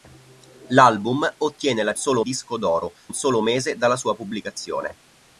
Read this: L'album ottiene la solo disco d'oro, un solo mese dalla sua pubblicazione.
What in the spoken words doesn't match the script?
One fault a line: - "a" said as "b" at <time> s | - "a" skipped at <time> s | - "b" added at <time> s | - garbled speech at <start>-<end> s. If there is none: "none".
none